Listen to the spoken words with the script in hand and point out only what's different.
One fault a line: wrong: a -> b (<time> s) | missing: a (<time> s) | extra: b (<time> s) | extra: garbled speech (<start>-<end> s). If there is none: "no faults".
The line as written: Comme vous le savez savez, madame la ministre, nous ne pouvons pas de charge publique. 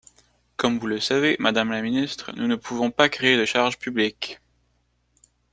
missing: savez (1.4 s)
extra: créer (3.1 s)